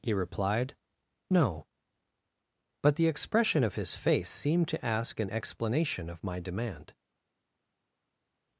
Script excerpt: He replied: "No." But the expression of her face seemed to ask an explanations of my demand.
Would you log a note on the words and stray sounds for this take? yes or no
yes